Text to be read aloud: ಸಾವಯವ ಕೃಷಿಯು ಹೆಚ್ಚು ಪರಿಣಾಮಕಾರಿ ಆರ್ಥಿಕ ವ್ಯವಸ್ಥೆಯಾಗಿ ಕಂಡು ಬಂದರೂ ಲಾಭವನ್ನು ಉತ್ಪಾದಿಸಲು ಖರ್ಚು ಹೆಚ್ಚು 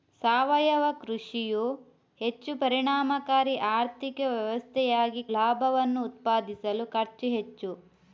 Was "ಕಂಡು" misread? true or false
true